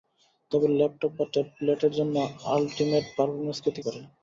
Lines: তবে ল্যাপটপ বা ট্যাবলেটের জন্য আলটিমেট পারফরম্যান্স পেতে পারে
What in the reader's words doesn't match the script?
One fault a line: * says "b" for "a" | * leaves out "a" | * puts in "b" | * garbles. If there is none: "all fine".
all fine